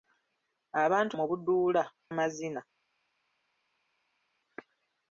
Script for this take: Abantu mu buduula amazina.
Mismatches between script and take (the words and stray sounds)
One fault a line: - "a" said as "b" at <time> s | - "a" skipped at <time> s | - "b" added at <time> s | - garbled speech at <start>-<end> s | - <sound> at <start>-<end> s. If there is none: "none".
none